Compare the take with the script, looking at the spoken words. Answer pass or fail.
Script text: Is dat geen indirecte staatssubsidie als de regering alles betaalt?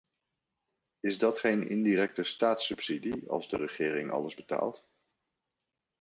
pass